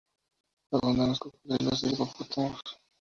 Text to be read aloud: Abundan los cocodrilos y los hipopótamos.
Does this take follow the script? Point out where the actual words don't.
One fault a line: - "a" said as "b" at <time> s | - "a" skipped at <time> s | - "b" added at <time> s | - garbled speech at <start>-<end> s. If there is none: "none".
- "los" skipped at 1.9 s